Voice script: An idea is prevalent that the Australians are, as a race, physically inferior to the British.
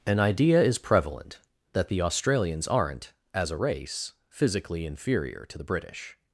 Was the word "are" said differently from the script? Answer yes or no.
yes